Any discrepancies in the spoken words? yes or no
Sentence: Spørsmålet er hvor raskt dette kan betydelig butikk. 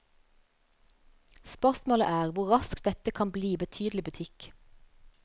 yes